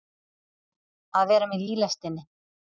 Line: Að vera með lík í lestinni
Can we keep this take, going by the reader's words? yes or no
no